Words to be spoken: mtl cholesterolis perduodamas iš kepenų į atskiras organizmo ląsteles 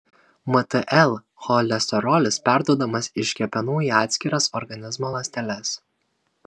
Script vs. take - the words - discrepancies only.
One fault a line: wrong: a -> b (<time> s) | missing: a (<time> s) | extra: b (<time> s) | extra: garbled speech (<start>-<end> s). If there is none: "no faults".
no faults